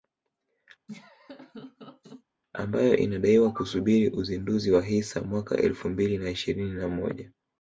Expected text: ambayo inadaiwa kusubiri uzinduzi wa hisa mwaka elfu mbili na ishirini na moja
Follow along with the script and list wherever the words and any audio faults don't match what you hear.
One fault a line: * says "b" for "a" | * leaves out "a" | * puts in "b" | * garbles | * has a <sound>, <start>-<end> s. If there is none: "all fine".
* has a laugh, 0.9-2.2 s